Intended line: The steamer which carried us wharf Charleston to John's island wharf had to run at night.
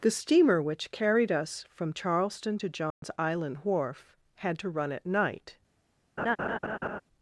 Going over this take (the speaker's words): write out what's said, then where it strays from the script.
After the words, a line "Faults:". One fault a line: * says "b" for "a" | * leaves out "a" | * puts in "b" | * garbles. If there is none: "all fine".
The steamer which carried us from Charleston to John's island wharf had to run at night.
Faults:
* says "from" for "wharf"